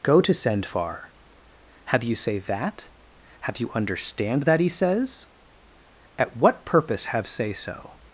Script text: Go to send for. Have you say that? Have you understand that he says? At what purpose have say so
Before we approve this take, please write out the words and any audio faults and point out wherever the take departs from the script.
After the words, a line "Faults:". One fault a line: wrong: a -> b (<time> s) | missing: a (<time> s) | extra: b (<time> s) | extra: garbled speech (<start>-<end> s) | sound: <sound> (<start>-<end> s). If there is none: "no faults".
Go to send far. Have you say that? Have you understand that he says? At what purpose have say so
Faults:
wrong: for -> far (0.6 s)